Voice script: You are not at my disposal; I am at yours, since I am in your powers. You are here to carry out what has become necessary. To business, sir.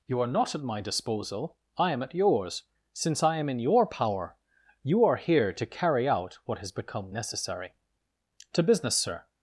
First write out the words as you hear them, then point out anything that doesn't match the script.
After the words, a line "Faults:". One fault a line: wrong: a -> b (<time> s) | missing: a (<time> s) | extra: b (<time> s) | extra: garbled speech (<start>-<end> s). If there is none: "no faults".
You are not at my disposal; I am at yours, since I am in your power. You are here to carry out what has become necessary. To business, sir.
Faults:
wrong: powers -> power (3.9 s)